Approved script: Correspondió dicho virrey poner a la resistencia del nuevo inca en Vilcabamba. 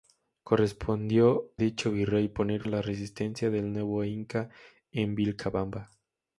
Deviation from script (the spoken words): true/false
false